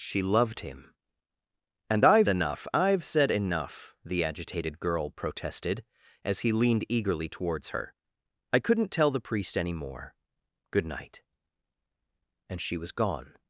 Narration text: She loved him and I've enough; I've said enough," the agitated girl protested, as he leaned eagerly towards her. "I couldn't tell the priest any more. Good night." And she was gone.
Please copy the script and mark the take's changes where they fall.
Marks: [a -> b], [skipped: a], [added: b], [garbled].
She loved him and I've enough; I've said enough," the agitated girl protested, as he leaned eagerly towards her. "I couldn't tell the priest any more. Good night." And she was gone.